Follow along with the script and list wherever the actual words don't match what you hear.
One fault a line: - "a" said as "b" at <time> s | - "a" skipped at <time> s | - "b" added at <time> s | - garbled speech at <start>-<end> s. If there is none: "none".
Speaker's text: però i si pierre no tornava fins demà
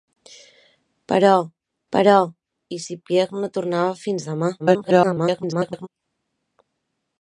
- "però" added at 1.9 s
- garbled speech at 4.6-5.9 s